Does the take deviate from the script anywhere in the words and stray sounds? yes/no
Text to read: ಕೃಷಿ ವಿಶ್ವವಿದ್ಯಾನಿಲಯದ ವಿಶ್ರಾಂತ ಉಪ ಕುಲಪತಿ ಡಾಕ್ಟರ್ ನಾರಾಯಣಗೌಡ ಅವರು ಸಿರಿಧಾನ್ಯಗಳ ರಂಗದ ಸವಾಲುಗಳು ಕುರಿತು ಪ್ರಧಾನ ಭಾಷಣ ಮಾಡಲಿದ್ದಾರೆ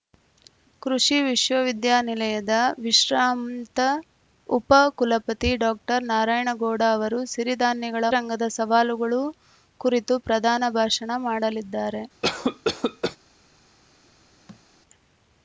yes